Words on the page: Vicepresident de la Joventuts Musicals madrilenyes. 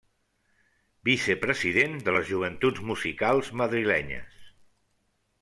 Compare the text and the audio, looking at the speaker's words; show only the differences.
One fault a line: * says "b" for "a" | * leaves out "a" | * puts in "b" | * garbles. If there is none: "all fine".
* says "les" for "la"